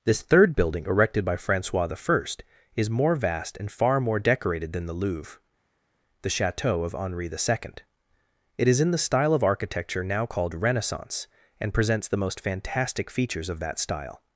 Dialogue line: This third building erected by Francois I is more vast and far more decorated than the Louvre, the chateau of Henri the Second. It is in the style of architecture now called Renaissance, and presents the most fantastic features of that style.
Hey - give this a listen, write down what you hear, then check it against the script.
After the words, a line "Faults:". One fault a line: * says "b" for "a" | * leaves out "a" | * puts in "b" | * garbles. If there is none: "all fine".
This third building erected by Francois I is more vast and far more decorated than the Louvre, the chateau of Henri the Second. It is in the style of architecture now called Renaissance, and presents the most fantastic features of that style.
Faults:
all fine